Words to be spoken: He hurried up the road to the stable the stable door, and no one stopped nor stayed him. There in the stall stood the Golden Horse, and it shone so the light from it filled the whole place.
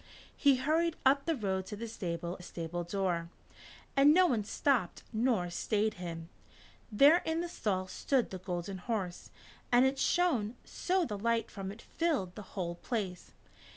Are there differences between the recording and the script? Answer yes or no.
no